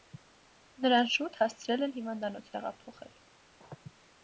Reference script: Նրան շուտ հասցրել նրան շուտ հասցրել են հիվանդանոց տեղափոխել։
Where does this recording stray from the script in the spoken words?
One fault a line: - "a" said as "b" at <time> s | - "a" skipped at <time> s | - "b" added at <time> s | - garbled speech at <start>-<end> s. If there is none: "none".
- "նրան շուտ հասցրել" skipped at 1.8 s